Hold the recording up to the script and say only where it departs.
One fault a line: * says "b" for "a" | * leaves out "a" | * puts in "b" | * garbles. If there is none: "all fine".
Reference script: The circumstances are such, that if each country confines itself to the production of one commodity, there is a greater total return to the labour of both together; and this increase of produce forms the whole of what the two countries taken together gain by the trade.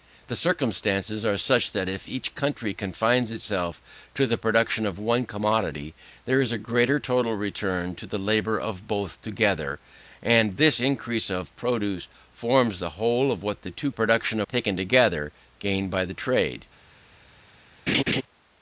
* says "production" for "countries"